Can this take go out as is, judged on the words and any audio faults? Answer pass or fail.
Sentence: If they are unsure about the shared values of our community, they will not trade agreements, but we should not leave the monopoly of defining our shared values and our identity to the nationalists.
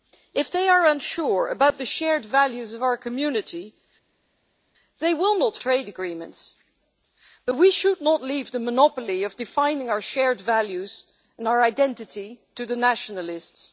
pass